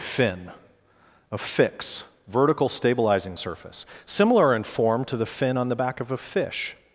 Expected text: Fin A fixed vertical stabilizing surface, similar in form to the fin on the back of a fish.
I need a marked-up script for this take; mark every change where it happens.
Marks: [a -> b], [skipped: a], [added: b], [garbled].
Fin A [fixed -> fix] vertical stabilizing surface, similar in form to the fin on the back of a fish.